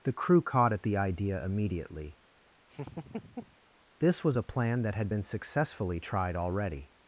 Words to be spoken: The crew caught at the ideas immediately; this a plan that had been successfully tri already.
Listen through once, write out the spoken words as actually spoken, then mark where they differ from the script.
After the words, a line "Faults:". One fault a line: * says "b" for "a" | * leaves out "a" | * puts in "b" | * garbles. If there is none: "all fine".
The crew caught at the idea immediately; this was a plan that had been successfully tried already.
Faults:
* says "idea" for "ideas"
* puts in "was"
* says "tried" for "tri"